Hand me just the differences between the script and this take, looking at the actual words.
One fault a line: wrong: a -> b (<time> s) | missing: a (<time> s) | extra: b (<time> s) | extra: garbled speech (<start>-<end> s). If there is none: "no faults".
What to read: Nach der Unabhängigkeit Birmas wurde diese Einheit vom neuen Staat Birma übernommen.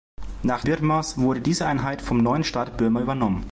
missing: der Unabhängigkeit (0.6 s)